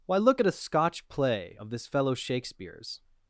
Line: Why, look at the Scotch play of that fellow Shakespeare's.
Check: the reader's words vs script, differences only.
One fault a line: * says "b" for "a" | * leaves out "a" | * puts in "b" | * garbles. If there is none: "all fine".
* says "a" for "the"
* says "this" for "that"